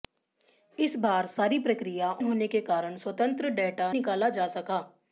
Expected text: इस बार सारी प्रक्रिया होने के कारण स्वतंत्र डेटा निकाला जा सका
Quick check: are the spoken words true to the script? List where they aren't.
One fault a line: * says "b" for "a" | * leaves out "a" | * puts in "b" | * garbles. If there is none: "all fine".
all fine